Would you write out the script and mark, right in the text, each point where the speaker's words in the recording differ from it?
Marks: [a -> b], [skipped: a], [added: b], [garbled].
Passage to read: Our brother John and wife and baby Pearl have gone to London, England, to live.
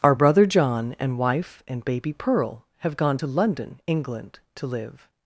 Our brother John and wife and baby Pearl have gone to London, England, to live.